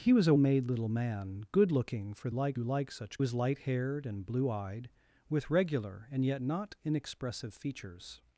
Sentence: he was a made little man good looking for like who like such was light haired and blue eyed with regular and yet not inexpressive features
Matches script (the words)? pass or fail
pass